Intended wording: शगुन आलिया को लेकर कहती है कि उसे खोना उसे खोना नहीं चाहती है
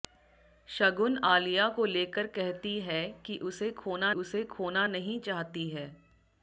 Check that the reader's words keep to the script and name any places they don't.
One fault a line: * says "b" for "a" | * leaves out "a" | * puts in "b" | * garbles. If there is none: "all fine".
all fine